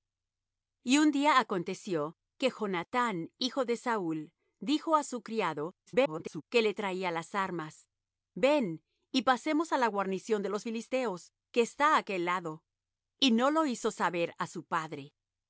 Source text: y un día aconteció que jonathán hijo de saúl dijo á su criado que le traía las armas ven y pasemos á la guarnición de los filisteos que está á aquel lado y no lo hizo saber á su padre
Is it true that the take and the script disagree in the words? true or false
true